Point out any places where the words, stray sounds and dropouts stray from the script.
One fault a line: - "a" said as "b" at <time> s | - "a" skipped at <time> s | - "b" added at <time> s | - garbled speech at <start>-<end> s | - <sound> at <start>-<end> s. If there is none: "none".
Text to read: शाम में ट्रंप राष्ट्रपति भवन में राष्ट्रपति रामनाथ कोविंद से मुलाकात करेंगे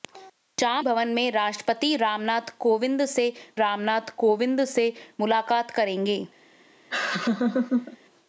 - "भवन" added at 0.8 s
- "ट्रंप" skipped at 1.3 s
- "भवन में राष्ट्रपति" said as "रामनाथ कोविंद से" at 2.0 s
- laugh at 6.9-8.0 s